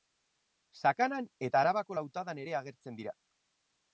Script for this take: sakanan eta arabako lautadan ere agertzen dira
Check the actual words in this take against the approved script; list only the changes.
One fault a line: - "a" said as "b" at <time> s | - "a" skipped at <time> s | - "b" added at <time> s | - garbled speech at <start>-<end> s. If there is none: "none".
none